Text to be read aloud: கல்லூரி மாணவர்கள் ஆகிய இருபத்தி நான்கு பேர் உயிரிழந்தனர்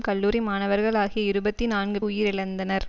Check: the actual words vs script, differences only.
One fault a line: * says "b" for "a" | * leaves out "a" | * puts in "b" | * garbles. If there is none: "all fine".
* leaves out "பேர்"